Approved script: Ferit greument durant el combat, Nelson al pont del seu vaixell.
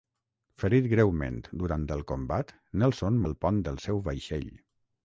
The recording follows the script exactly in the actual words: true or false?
true